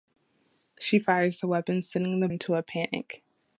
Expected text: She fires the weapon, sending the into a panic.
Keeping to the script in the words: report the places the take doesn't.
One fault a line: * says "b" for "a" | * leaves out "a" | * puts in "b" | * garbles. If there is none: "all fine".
all fine